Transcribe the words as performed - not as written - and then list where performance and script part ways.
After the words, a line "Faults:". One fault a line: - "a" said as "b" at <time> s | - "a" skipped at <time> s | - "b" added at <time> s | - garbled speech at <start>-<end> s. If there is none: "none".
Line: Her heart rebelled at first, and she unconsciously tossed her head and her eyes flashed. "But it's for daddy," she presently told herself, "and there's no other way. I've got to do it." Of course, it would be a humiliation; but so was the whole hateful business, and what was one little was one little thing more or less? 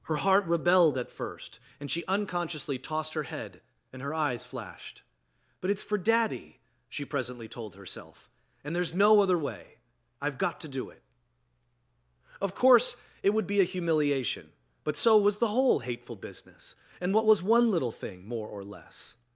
Her heart rebelled at first, and she unconsciously tossed her head and her eyes flashed. "But it's for daddy," she presently told herself, "and there's no other way. I've got to do it." Of course, it would be a humiliation; but so was the whole hateful business, and what was one little thing more or less?
Faults:
- "was one little" skipped at 17.9 s